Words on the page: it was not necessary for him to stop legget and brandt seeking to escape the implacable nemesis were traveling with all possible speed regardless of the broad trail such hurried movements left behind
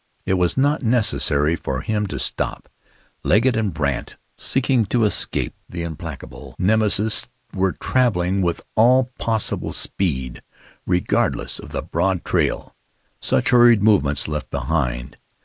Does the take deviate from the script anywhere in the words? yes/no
no